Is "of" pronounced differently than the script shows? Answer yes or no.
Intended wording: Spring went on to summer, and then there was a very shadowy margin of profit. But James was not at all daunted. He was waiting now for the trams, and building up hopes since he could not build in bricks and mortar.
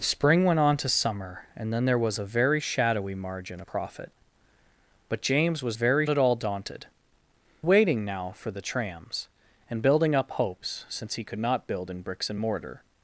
yes